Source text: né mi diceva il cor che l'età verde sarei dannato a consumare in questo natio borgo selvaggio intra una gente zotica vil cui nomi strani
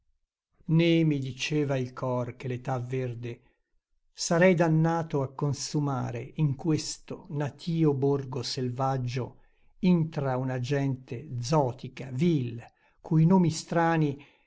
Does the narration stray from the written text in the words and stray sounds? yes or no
no